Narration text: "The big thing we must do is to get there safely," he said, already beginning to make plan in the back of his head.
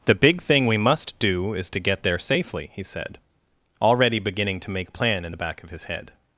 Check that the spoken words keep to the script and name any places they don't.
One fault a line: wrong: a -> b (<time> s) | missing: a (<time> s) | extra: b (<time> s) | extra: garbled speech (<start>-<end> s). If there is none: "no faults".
no faults